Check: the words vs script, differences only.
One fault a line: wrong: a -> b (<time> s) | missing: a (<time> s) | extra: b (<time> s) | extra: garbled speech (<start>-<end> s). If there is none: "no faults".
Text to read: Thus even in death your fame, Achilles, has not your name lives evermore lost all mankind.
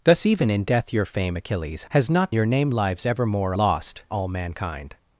no faults